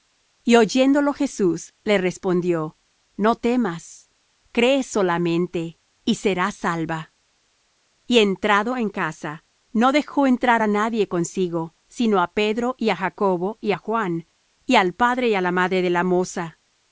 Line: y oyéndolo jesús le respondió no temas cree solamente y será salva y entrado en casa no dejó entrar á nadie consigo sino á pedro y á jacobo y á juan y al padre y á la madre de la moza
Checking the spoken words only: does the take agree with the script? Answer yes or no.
yes